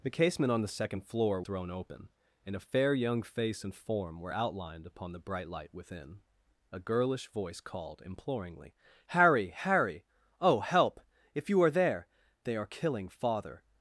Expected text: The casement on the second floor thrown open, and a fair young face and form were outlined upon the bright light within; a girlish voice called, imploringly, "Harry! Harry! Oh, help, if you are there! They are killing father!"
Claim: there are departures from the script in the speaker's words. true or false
false